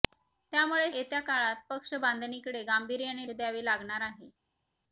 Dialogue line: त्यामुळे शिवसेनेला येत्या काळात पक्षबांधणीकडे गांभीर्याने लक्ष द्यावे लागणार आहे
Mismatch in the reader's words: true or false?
true